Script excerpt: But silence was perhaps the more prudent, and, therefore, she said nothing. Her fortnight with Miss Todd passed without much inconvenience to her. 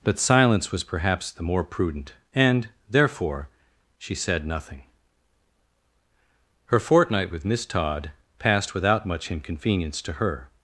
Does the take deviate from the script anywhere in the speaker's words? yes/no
no